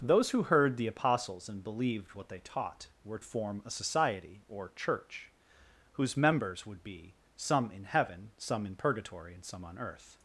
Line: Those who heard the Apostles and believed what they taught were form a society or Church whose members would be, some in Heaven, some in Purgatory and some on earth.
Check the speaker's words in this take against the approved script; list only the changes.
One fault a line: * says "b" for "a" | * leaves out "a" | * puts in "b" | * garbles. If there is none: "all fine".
all fine